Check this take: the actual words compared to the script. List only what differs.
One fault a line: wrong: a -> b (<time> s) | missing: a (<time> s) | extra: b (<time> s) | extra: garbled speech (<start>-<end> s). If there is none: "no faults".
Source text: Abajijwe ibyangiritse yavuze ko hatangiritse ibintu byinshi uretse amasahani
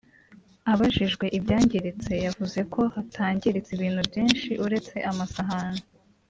no faults